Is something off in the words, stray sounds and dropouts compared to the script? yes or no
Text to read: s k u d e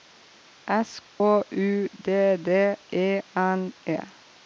yes